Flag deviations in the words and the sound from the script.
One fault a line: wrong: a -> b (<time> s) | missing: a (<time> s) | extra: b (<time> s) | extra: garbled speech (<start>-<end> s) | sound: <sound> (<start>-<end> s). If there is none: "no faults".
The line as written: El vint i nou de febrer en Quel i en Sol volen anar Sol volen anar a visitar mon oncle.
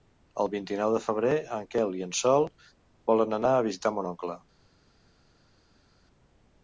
missing: Sol volen anar (3.6 s)